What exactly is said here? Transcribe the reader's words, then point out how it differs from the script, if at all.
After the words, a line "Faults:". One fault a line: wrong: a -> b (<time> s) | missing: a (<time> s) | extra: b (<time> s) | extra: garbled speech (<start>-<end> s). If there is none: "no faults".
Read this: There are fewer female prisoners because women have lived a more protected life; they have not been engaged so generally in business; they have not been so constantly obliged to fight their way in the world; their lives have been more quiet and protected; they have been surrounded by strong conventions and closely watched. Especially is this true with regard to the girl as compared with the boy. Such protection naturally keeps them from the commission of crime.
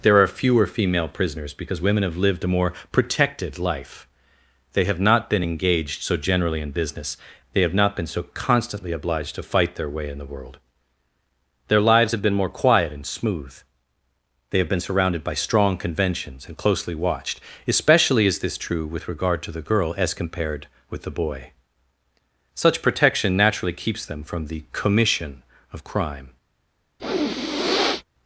There are fewer female prisoners because women have lived a more protected life; they have not been engaged so generally in business; they have not been so constantly obliged to fight their way in the world; their lives have been more quiet and smooth; they have been surrounded by strong conventions and closely watched. Especially is this true with regard to the girl as compared with the boy. Such protection naturally keeps them from the commission of crime.
Faults:
wrong: protected -> smooth (13.1 s)